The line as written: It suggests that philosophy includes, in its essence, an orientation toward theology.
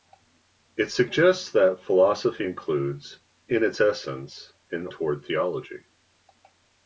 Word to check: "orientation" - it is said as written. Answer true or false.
false